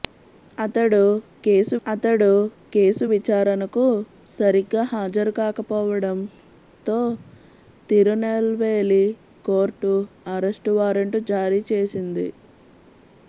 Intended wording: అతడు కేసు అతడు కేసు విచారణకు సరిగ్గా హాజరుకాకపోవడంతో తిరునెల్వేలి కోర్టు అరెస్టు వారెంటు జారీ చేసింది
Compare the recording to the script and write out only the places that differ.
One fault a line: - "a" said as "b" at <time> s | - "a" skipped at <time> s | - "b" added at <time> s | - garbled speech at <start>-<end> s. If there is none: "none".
none